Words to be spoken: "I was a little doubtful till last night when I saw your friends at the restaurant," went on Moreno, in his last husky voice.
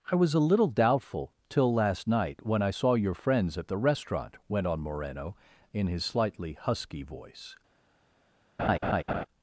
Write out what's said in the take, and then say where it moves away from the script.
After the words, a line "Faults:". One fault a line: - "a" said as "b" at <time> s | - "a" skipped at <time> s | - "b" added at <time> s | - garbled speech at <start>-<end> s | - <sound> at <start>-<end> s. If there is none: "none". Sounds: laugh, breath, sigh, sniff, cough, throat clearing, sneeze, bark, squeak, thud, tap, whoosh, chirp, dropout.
"I was a little doubtful till last night when I saw your friends at the restaurant," went on Moreno, in his slightly husky voice.
Faults:
- "last" said as "slightly" at 6.0 s
- laugh at 8.6-9.3 s